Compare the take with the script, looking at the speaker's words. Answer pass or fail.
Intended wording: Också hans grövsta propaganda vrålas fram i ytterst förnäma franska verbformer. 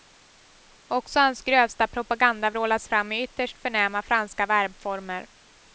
pass